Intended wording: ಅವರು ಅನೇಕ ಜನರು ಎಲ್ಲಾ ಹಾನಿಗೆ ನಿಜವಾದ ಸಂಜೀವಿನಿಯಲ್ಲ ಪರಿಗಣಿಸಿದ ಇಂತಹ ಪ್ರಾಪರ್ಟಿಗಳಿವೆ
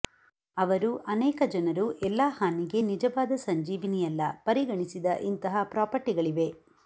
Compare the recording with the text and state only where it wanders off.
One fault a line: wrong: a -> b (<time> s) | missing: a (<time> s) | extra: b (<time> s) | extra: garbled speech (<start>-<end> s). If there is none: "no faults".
no faults